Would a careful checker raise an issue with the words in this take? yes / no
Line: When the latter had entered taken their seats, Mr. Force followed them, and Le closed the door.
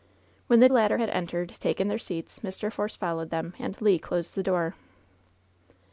no